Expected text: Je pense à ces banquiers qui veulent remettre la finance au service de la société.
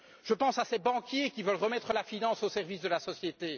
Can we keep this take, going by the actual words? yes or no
yes